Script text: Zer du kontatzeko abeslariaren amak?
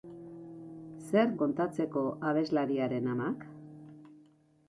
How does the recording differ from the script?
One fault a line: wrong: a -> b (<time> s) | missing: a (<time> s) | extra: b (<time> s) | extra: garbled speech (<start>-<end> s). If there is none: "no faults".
missing: du (1.4 s)